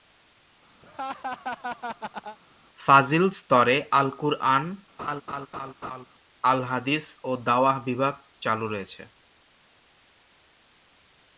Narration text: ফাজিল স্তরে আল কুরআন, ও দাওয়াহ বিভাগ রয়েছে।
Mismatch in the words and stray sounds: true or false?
true